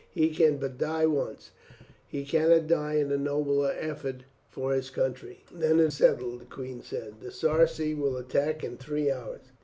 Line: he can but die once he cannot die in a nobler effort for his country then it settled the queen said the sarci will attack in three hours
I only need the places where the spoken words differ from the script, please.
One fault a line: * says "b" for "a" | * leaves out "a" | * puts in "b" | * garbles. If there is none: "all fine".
all fine